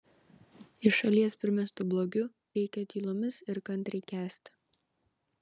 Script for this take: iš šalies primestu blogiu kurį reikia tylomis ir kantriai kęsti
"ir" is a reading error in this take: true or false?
false